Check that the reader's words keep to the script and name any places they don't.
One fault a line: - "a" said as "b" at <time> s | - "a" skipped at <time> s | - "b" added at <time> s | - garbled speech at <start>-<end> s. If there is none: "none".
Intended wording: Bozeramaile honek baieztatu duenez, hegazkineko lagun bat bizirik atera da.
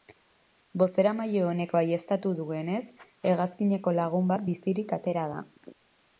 none